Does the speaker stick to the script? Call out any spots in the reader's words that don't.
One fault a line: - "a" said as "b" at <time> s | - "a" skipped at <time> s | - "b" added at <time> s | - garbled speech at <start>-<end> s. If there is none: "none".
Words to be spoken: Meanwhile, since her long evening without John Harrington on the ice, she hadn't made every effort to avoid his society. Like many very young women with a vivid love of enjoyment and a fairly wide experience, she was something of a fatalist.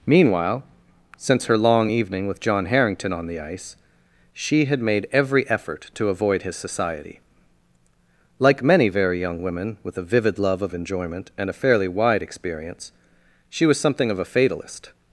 - "without" said as "with" at 2.3 s
- "hadn't" said as "had" at 4.6 s